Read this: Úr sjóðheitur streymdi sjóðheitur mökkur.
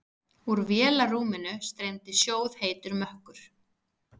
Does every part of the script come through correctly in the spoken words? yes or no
no